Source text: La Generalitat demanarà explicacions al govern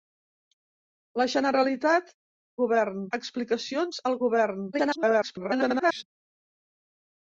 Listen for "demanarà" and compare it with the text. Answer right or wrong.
wrong